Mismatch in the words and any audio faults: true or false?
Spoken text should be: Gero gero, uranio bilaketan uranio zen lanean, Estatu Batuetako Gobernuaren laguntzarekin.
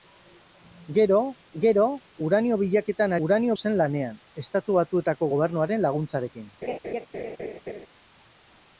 true